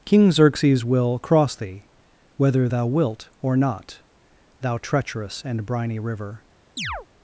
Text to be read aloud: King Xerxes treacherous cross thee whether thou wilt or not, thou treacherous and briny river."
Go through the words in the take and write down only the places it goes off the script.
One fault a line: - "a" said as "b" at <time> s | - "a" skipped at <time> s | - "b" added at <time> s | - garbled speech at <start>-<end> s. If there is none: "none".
- "treacherous" said as "will" at 0.8 s